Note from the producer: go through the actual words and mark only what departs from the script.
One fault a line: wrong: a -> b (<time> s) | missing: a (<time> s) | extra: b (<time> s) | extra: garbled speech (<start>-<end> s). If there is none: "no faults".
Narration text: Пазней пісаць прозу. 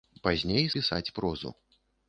no faults